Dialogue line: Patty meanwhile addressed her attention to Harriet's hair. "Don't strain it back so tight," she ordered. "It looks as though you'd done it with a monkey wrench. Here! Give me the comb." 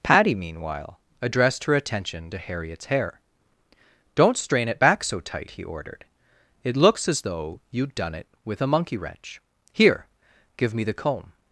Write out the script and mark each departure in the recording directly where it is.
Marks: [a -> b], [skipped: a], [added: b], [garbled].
Patty meanwhile addressed her attention to Harriet's hair. "Don't strain it back so tight," [she -> he] ordered. "It looks as though you'd done it with a monkey wrench. Here! Give me the comb."